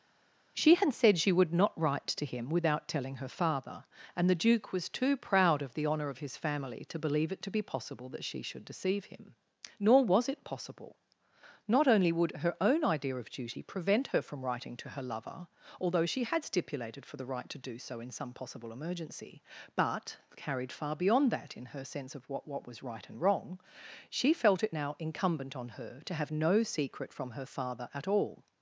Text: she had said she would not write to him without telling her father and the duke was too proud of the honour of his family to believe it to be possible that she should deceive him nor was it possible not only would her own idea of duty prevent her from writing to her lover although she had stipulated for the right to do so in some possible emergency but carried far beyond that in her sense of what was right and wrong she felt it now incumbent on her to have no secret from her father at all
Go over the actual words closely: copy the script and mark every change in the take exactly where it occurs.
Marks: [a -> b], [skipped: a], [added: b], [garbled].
she had said she would not write to him without telling her father and the duke was too proud of the honour of his family to believe it to be possible that she should deceive him nor was it possible not only would her own idea of duty prevent her from writing to her lover although she had stipulated for the right to do so in some possible emergency but carried far beyond that in her sense of what [added: what] was right and wrong she felt it now incumbent on her to have no secret from her father at all